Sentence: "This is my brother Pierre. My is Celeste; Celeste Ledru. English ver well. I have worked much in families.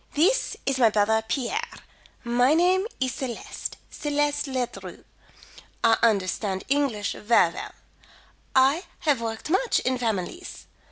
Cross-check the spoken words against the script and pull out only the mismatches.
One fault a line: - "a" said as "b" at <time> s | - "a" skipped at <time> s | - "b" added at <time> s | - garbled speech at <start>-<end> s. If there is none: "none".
- "name" added at 2.5 s
- "I understand" added at 5.8 s